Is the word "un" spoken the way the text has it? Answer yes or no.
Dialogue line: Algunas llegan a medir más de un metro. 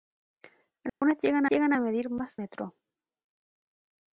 no